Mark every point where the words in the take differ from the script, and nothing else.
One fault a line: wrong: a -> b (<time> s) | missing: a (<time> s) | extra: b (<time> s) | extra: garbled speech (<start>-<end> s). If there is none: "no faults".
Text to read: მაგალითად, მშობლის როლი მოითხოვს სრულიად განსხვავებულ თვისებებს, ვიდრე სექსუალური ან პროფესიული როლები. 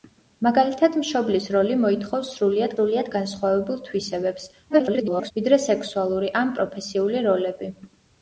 extra: სრულიად (2.8 s)
extra: garbled speech (4.7-5.3 s)